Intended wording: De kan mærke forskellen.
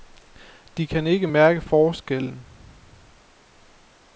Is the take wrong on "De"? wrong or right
right